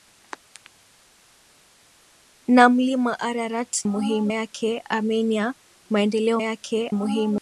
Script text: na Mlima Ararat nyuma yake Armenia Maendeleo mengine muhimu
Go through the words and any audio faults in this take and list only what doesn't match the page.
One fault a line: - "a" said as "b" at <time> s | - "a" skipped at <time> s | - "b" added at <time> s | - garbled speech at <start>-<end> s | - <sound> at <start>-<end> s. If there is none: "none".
- "nyuma" said as "muhimu" at 3.9 s
- "mengine" said as "yake" at 6.4 s